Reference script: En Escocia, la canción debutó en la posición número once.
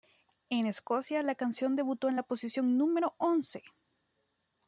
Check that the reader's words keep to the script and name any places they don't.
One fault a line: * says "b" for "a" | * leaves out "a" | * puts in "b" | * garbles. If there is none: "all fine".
all fine